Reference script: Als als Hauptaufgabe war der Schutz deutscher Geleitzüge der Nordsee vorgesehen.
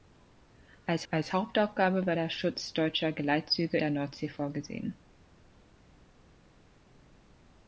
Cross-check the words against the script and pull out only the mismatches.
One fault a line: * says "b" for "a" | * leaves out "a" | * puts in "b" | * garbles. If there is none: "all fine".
all fine